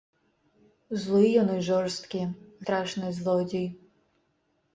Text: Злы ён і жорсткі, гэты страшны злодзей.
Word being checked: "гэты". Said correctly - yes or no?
no